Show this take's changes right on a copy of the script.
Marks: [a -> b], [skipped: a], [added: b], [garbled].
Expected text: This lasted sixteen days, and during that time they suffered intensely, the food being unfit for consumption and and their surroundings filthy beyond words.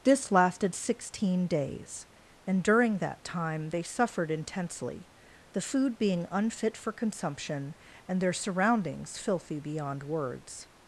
This lasted sixteen days, and during that time they suffered intensely, the food being unfit for consumption and [skipped: and] their surroundings filthy beyond words.